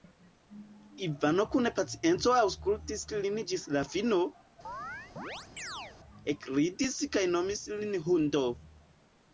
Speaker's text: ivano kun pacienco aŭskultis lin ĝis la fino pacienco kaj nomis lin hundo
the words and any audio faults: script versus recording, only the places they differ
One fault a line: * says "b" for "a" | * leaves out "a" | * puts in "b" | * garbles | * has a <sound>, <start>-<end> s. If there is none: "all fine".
* has a chirp, 4.6-6.0 s
* says "ekridis" for "pacienco"